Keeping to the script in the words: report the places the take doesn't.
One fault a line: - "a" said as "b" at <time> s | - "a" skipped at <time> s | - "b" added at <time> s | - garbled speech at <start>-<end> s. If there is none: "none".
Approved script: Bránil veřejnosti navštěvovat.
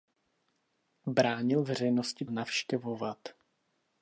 none